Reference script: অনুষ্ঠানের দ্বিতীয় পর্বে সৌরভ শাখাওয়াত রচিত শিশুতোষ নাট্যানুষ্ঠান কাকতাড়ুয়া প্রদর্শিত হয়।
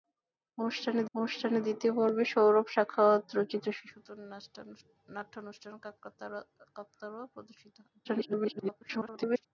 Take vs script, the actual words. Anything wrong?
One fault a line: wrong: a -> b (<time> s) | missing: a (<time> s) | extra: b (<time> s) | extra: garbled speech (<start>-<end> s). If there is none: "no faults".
extra: অনুষ্ঠানের (1.1 s)
extra: garbled speech (8.0-9.5 s)